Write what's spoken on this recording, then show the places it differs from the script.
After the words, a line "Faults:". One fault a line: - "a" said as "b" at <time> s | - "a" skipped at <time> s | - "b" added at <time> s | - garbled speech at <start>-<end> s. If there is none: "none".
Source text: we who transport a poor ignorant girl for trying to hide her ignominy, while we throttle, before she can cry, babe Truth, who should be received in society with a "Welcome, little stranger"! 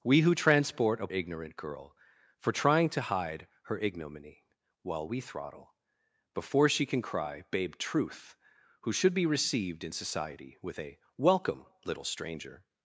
we who transport a ignorant girl for trying to hide her ignominy, while we throttle, before she can cry, babe Truth, who should be received in society with a "Welcome, little stranger"!
Faults:
- "poor" skipped at 1.1 s